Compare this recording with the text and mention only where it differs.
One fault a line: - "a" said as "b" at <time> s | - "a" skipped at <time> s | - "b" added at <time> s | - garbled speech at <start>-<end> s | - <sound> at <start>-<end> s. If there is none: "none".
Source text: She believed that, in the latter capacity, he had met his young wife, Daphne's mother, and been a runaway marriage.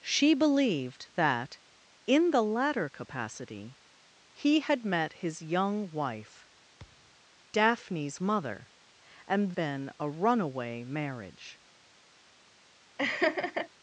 - thud at 6.8-7.2 s
- laugh at 13.0-13.7 s